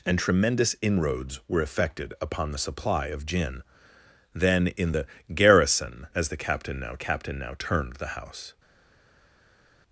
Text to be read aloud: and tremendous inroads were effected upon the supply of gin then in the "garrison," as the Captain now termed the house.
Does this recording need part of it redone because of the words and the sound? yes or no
yes